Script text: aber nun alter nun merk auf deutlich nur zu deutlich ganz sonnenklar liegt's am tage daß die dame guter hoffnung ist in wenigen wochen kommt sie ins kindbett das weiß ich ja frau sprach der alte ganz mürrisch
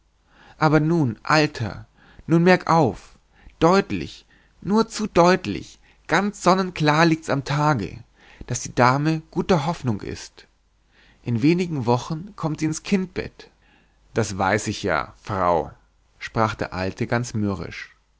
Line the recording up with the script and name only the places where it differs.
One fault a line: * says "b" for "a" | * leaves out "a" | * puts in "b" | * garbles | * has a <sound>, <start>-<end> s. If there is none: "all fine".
all fine